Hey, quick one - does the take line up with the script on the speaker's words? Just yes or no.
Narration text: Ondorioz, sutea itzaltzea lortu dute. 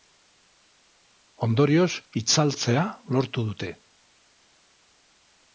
no